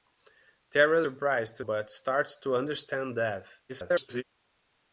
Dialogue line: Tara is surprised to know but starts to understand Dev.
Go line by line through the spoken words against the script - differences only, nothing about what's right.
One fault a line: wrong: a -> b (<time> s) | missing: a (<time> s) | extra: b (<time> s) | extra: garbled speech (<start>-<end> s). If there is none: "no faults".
missing: is (1.0 s)
missing: know (1.6 s)
extra: garbled speech (3.7-4.2 s)